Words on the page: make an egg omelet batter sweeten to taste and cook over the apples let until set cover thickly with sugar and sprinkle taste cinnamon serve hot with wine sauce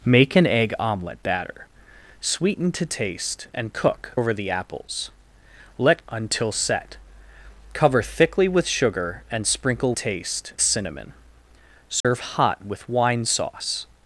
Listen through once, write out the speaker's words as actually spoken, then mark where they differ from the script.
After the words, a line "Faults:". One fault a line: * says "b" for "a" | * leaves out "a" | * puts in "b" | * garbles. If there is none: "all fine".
make an egg omelet batter sweeten to taste and cook over the apples let until set cover thickly with sugar and sprinkle taste cinnamon serve hot with wine sauce
Faults:
all fine